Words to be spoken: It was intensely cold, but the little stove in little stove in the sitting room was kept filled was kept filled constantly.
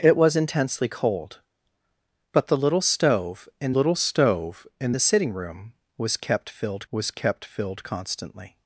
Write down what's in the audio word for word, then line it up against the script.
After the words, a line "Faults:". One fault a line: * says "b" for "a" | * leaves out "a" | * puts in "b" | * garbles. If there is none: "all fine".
It was intensely cold, but the little stove in little stove in the sitting room was kept filled was kept filled constantly.
Faults:
all fine